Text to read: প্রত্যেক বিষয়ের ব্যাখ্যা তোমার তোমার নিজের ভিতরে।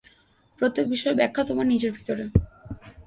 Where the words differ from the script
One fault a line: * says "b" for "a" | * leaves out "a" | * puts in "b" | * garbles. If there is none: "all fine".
* leaves out "তোমার"